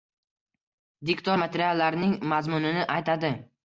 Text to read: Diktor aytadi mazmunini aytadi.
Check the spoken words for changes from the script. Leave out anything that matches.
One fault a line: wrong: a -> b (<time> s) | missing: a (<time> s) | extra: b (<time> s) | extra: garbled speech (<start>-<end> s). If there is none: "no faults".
wrong: aytadi -> materiallarning (1.3 s)